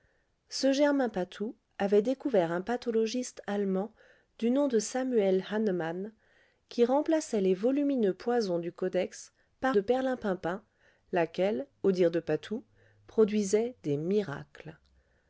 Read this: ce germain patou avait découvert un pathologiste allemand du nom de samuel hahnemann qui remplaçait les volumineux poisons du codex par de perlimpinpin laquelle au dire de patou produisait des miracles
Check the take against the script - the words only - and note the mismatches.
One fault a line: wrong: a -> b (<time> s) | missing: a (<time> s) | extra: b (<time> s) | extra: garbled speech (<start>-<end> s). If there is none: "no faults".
no faults